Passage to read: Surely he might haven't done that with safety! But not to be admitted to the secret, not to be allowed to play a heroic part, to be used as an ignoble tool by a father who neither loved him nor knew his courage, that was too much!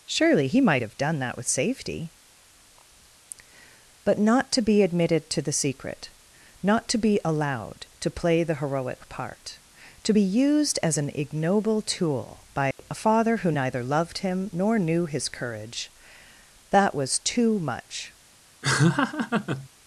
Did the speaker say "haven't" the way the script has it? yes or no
no